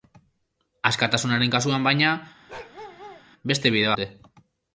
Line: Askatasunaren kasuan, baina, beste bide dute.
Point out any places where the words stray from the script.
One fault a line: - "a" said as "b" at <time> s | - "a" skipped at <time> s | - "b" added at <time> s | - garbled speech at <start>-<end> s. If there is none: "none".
none